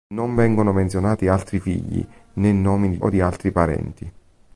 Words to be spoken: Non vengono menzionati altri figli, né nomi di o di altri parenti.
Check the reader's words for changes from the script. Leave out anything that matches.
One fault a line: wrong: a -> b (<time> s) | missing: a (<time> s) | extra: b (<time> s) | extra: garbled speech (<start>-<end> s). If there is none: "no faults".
no faults